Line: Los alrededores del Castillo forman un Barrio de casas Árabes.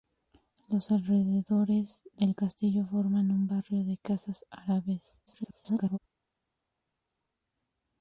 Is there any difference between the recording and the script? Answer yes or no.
yes